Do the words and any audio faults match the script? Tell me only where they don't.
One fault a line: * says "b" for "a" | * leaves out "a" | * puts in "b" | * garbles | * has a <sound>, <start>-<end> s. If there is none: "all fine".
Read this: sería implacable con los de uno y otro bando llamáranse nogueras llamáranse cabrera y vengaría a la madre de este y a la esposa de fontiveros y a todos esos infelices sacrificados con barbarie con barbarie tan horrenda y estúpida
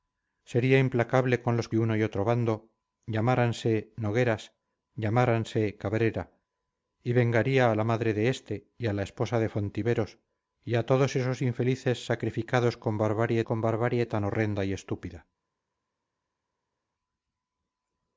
all fine